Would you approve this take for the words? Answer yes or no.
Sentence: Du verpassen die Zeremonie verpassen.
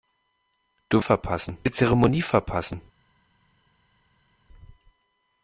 yes